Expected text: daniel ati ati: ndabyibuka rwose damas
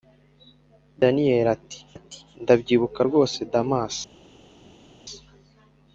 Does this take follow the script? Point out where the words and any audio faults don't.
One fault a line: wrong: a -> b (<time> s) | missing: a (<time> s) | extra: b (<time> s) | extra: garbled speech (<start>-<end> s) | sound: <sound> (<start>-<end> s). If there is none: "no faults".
no faults